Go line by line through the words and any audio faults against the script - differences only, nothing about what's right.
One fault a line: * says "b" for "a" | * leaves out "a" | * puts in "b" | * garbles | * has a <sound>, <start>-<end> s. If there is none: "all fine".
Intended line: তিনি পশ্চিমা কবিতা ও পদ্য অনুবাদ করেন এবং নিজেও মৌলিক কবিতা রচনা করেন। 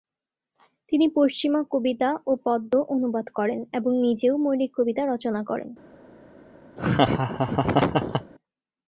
* has a laugh, 6.8-8.3 s